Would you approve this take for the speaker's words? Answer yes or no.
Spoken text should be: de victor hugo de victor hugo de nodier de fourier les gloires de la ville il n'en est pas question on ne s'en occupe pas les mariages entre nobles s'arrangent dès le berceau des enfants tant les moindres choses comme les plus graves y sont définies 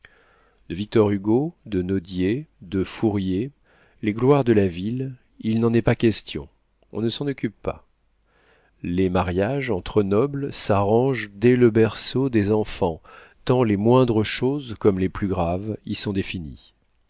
no